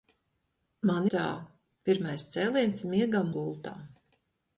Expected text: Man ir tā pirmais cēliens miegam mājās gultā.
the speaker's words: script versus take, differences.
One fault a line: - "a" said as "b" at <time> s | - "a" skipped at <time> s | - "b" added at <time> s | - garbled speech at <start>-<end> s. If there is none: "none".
- "ir" skipped at 1.1 s
- "mājās" skipped at 3.3 s